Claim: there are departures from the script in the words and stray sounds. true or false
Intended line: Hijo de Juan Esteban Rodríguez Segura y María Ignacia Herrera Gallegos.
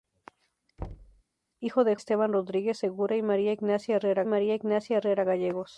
true